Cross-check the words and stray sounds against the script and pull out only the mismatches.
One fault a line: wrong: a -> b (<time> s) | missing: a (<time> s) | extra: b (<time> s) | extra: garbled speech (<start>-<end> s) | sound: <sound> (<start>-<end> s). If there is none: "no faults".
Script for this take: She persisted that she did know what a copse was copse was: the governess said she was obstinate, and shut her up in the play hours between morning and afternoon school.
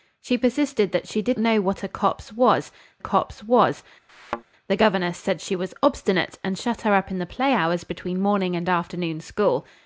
sound: thud (4.1-4.4 s)